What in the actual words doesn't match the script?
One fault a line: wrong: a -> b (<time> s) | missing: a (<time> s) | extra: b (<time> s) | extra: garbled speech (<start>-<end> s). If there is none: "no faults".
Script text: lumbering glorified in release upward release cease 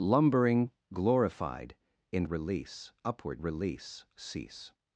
no faults